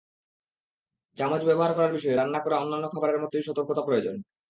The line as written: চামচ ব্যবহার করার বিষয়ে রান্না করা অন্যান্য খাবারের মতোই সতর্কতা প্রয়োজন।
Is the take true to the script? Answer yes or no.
yes